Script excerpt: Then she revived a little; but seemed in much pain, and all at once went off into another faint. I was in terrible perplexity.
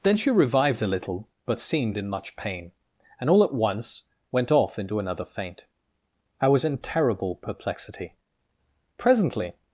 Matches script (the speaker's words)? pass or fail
fail